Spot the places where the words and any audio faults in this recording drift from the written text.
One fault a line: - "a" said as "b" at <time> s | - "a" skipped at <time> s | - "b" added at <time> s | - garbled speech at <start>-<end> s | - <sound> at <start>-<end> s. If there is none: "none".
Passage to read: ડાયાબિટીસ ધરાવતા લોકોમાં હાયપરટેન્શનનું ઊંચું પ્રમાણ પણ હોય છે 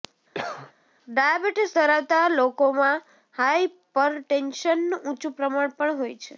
- cough at 0.3-0.7 s